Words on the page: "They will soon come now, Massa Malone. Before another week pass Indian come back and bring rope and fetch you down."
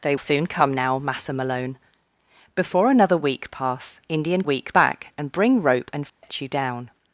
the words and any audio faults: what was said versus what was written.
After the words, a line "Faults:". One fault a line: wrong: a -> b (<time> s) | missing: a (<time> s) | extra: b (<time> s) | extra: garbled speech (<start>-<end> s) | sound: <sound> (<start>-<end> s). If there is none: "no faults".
"They soon come now, Massa Malone. Before another week pass Indian week back and bring rope and fetch you down."
Faults:
missing: will (0.1 s)
wrong: come -> week (4.4 s)
sound: dropout (6.1-6.2 s)